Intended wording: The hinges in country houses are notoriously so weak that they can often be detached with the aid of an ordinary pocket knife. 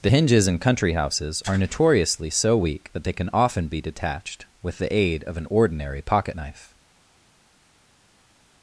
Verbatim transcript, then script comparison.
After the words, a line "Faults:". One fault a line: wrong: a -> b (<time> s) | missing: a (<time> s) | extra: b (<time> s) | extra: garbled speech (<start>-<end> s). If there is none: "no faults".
The hinges in country houses are notoriously so weak that they can often be detached with the aid of an ordinary pocket knife.
Faults:
no faults